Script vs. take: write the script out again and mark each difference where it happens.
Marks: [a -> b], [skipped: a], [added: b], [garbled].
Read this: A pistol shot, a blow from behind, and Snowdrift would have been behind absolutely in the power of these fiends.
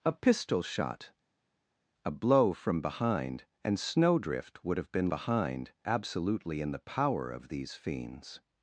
A pistol shot, a blow from behind, and Snowdrift would have been behind absolutely in the power of these fiends.